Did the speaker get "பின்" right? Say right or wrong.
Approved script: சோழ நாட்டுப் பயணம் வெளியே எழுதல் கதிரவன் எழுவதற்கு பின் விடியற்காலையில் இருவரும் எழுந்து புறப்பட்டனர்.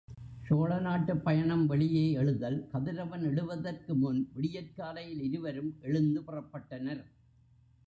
wrong